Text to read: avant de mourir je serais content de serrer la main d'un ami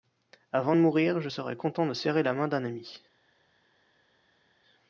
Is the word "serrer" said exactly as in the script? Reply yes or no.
yes